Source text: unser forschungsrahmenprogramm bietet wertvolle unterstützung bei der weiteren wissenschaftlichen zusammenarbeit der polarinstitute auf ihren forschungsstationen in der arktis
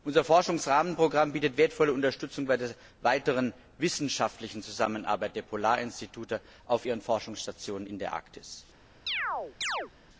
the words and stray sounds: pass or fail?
fail